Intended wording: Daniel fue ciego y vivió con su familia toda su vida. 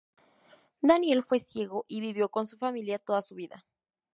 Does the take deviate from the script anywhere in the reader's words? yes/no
no